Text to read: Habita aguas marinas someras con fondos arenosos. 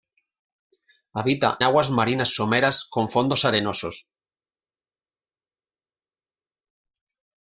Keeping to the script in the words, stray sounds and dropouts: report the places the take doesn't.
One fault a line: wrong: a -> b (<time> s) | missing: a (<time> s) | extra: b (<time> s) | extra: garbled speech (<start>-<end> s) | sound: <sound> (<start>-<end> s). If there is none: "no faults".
no faults